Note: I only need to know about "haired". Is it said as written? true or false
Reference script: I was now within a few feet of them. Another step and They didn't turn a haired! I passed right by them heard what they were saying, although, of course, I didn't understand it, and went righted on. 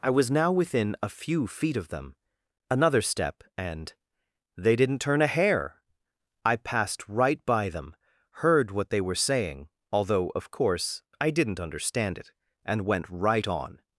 false